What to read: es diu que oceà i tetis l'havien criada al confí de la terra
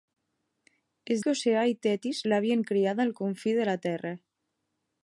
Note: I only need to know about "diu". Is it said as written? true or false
false